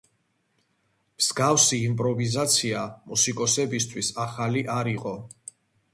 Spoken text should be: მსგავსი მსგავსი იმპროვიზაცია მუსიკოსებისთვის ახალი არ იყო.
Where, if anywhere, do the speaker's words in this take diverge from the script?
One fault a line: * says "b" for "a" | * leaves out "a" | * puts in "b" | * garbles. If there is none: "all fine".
* leaves out "მსგავსი"